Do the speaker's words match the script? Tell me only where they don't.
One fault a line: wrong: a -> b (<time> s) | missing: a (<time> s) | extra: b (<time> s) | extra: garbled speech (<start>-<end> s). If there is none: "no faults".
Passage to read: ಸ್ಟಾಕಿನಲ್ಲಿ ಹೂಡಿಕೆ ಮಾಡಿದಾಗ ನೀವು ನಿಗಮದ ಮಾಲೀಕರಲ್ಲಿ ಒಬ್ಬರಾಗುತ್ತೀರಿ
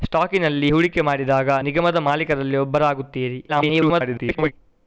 missing: ನೀವು (1.5 s)
extra: garbled speech (3.5-4.5 s)